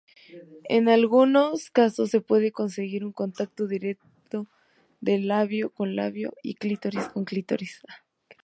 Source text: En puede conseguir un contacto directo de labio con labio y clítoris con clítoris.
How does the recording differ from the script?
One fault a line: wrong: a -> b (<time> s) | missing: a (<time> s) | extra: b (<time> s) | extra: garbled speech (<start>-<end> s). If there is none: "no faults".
extra: algunos casos se (0.9 s)